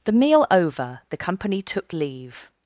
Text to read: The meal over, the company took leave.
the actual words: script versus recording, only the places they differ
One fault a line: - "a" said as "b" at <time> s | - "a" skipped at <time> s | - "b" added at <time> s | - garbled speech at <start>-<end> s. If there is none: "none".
none